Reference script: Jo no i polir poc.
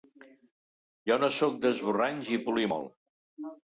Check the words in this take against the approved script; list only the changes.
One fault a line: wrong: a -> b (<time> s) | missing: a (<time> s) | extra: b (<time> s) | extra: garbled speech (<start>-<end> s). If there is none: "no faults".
extra: sóc d'esborranys (1.4 s)
wrong: poc -> molt (2.8 s)